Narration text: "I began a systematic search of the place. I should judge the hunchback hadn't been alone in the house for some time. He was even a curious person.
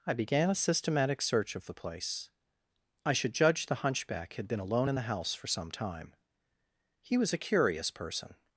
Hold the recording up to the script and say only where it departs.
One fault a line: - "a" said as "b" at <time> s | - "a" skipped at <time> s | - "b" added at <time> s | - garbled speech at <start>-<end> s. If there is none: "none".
- "hadn't" said as "had" at 4.3 s
- "even" skipped at 7.3 s